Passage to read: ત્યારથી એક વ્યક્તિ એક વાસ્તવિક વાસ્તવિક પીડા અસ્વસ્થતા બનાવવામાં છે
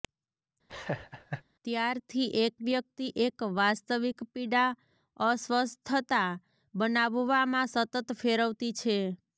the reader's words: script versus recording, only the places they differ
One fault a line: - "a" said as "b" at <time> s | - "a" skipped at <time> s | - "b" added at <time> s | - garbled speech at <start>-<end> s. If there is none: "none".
- "વાસ્તવિક" skipped at 4.2 s
- "સતત ફેરવતી" added at 7.7 s